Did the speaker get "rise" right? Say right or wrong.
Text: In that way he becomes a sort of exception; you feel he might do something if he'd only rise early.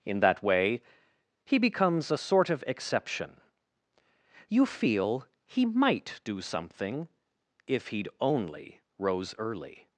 wrong